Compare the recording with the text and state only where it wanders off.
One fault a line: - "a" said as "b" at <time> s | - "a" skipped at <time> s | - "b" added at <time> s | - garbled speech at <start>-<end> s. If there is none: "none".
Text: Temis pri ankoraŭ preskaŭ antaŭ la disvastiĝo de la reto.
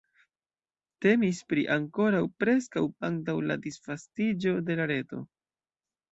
none